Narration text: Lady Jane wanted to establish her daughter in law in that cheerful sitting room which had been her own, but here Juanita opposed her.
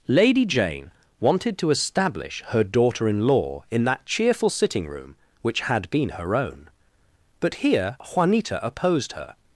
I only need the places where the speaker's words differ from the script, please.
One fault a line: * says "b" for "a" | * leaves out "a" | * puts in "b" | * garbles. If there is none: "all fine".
all fine